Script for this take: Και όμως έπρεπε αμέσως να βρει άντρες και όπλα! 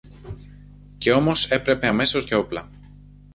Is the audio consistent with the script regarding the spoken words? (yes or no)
no